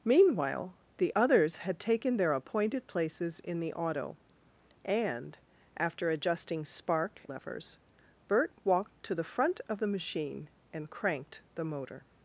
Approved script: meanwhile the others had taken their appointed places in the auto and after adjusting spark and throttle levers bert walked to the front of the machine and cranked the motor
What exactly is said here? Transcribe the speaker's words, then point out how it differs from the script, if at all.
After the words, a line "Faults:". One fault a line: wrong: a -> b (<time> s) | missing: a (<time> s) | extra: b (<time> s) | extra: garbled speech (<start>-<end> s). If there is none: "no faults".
meanwhile the others had taken their appointed places in the auto and after adjusting spark levers bert walked to the front of the machine and cranked the motor
Faults:
missing: and throttle (7.2 s)